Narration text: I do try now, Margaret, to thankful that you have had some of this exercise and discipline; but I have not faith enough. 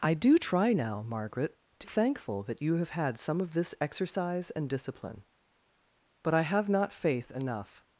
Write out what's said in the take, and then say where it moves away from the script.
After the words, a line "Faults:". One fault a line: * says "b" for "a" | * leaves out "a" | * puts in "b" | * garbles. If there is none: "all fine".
I do try now, Margaret, to thankful that you have had some of this exercise and discipline; but I have not faith enough.
Faults:
all fine